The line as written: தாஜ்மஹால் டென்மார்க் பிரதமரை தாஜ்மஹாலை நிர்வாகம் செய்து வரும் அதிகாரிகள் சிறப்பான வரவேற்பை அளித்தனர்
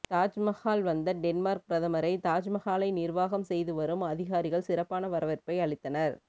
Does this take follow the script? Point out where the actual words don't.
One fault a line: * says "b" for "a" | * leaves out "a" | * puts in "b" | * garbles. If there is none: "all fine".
* puts in "வந்த"